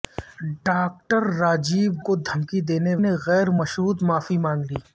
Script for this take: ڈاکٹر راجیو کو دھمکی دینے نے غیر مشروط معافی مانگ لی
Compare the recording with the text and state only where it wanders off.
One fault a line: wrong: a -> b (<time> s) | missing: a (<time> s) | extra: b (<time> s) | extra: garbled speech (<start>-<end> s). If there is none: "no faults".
no faults